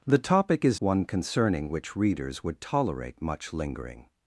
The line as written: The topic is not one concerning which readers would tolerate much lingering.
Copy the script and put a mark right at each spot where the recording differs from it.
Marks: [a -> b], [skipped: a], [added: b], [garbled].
The topic is [skipped: not] one concerning which readers would tolerate much lingering.